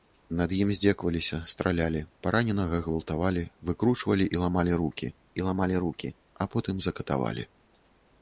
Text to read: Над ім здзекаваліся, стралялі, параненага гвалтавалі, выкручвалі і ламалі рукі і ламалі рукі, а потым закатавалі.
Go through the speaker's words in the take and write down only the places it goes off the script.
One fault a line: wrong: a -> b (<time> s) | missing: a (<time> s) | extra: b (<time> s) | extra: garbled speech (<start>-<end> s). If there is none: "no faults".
no faults